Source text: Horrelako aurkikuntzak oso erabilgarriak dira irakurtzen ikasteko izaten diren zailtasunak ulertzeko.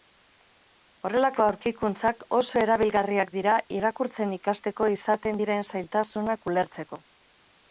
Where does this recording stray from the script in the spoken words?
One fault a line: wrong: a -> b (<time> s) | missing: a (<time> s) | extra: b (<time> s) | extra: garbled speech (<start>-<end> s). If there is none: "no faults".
no faults